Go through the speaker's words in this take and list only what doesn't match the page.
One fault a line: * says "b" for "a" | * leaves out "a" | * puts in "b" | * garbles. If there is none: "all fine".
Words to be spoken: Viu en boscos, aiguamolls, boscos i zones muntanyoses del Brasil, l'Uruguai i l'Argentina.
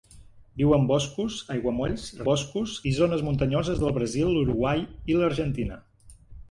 all fine